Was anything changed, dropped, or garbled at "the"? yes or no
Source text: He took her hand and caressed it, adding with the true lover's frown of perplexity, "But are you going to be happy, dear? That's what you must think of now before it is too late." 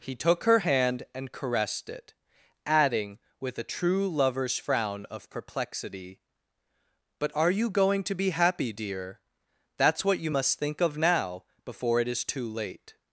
yes